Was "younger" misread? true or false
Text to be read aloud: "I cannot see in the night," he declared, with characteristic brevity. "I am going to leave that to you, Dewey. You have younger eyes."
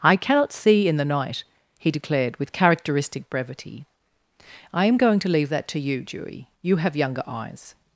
false